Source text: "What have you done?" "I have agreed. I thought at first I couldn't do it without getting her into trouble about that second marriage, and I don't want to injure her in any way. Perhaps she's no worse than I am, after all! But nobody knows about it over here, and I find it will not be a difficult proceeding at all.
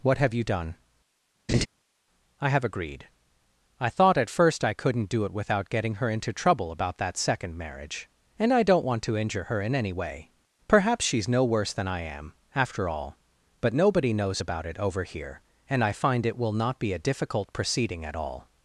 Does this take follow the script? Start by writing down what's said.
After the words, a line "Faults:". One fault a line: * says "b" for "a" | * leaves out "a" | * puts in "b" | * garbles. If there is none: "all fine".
"What have you done?" "I have agreed. I thought at first I couldn't do it without getting her into trouble about that second marriage, and I don't want to injure her in any way. Perhaps she's no worse than I am, after all! But nobody knows about it over here, and I find it will not be a difficult proceeding at all.
Faults:
all fine